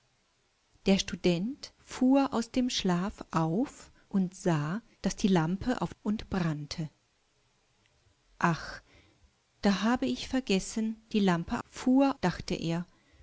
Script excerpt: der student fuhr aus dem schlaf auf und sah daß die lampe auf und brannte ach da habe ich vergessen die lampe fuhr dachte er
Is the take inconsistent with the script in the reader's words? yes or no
no